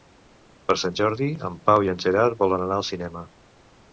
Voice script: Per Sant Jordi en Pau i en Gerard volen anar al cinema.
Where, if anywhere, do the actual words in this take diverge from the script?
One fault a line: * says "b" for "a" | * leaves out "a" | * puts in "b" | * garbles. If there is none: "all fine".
all fine